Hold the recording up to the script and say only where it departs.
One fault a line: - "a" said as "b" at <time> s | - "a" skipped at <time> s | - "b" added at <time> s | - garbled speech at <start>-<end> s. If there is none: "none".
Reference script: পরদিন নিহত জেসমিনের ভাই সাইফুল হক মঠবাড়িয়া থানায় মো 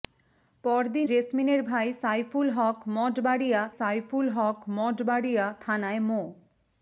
- "নিহত" skipped at 1.1 s
- "সাইফুল হক মঠবাড়িয়া" added at 3.8 s